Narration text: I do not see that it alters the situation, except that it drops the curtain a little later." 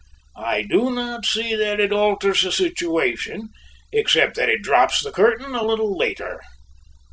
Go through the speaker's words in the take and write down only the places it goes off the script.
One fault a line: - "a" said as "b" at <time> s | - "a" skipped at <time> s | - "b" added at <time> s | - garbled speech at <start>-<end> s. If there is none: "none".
none